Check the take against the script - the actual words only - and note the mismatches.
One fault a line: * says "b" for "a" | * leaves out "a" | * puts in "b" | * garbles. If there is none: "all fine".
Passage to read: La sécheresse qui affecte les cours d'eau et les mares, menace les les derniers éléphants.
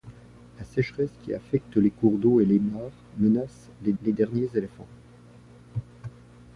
all fine